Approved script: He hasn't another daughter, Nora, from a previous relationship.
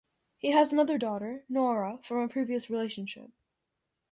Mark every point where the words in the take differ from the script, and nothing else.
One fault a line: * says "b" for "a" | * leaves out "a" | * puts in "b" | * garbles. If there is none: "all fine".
* says "has" for "hasn't"